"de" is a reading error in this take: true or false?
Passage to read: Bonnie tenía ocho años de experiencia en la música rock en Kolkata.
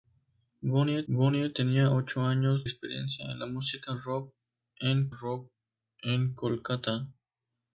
true